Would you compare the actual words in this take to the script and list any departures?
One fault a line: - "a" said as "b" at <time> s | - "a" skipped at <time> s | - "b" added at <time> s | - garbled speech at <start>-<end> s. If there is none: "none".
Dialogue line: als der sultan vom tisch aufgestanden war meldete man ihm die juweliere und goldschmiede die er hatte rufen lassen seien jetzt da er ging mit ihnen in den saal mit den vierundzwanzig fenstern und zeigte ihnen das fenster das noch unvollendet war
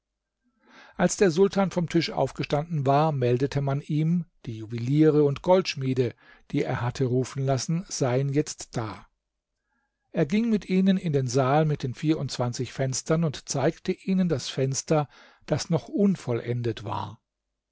none